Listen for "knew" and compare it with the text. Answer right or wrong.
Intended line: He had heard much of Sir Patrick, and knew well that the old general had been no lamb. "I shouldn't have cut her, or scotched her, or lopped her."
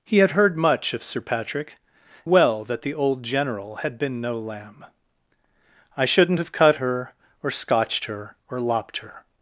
wrong